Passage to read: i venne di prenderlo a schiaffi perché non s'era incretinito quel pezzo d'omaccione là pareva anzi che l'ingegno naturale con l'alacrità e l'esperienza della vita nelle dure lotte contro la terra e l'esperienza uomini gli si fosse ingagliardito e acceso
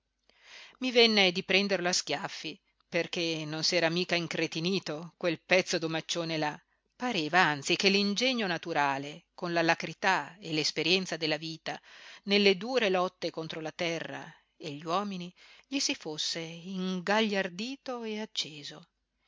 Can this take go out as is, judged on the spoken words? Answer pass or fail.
fail